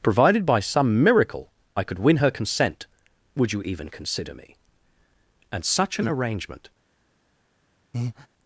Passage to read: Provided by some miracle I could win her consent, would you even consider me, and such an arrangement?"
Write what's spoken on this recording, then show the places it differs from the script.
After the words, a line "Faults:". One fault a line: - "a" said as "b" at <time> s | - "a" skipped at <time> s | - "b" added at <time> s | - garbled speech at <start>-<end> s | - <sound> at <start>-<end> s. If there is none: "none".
Provided by some miracle I could win her consent, would you even consider me, and such an arrangement?"
Faults:
- breath at 7.9-8.3 s